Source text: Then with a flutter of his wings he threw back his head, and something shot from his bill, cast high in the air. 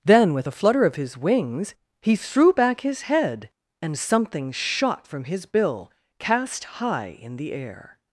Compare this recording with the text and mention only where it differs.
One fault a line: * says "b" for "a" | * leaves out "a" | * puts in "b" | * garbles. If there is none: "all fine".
all fine